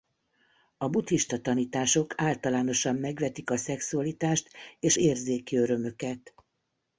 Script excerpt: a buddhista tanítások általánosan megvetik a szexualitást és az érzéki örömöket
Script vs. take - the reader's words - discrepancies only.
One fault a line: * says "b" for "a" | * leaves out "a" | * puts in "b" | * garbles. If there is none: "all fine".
* leaves out "az"